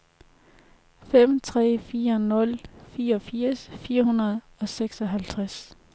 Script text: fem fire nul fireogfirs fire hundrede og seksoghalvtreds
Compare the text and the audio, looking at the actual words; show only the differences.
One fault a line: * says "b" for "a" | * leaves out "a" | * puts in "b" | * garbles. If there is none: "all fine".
* puts in "tre"